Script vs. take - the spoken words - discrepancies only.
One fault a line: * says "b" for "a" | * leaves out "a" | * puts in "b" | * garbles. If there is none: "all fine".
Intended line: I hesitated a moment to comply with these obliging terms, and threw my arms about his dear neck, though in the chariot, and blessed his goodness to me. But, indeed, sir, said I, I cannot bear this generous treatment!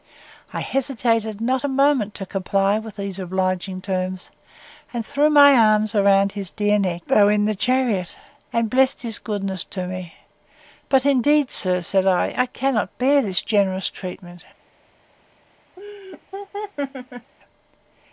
* puts in "not"